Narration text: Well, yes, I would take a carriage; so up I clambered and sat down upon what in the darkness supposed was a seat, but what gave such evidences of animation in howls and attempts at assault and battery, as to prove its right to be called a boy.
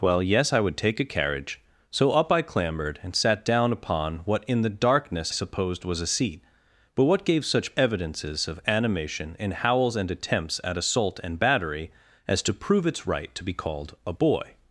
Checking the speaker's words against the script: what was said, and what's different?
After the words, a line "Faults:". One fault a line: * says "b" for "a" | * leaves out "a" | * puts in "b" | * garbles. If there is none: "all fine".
Well, yes, I would take a carriage; so up I clambered and sat down upon what in the darkness supposed was a seat, but what gave such evidences of animation in howls and attempts at assault and battery, as to prove its right to be called a boy.
Faults:
all fine